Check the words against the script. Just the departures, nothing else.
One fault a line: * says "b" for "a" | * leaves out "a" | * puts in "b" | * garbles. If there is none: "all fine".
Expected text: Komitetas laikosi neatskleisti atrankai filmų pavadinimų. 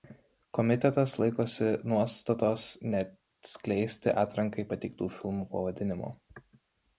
* puts in "nuostatos"
* puts in "pateiktų"